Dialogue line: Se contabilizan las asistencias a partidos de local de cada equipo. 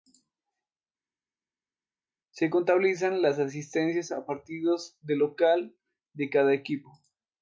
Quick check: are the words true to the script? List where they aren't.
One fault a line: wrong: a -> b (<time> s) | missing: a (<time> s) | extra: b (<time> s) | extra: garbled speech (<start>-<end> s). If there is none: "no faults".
no faults